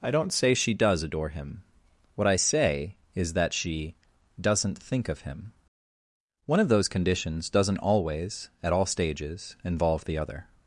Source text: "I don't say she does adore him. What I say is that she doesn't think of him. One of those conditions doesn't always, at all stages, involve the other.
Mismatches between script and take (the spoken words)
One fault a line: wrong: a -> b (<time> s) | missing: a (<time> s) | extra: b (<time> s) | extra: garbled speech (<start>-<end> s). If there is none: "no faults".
no faults